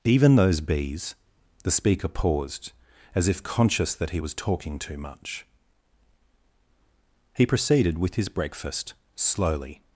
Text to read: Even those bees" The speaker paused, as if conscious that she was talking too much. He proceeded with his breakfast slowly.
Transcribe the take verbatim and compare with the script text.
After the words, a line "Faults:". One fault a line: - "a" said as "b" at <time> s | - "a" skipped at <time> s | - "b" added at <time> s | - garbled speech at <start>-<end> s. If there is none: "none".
Even those bees" The speaker paused, as if conscious that he was talking too much. He proceeded with his breakfast slowly.
Faults:
- "she" said as "he" at 4.1 s